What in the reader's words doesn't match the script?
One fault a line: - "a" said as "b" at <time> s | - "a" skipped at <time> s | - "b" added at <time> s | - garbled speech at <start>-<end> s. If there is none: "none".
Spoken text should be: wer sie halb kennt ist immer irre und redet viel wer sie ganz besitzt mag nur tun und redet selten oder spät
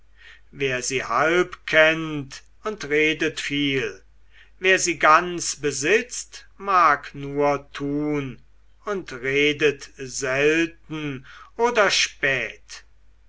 - "ist immer irre" skipped at 2.4 s